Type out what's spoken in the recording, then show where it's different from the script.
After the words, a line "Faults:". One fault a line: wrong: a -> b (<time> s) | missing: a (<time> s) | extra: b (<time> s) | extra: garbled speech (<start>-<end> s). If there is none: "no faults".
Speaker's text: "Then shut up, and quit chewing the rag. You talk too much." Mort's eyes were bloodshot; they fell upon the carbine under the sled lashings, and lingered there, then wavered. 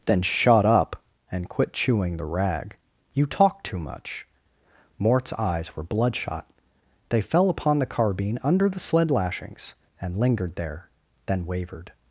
"Then shut up, and quit chewing the rag. You talk too much." Mort's eyes were bloodshot; they fell upon the carbine under the sled lashings, and lingered there, then wavered.
Faults:
no faults